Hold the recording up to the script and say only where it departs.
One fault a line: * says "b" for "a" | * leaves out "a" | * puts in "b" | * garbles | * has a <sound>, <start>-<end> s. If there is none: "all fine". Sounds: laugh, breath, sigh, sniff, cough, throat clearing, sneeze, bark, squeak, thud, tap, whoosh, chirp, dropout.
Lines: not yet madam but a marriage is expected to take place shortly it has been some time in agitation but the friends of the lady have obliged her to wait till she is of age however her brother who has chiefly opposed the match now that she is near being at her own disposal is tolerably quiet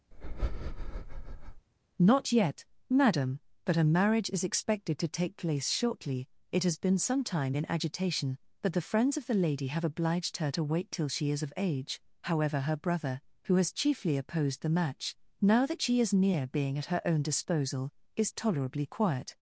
* has a breath, 0.1-1.7 s